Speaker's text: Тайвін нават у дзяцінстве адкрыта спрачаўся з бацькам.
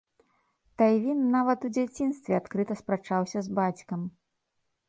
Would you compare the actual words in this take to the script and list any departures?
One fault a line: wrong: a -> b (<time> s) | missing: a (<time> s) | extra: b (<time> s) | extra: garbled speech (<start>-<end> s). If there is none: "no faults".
no faults